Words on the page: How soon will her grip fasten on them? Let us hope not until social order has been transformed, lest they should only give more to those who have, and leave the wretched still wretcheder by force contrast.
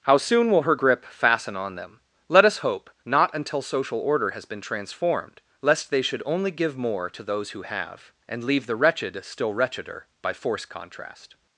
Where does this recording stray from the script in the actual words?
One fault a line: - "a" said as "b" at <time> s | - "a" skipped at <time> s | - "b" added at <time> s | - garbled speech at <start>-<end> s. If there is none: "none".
none